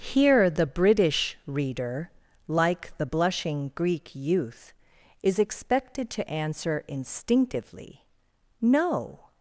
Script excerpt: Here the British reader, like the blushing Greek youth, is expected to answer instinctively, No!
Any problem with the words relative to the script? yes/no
no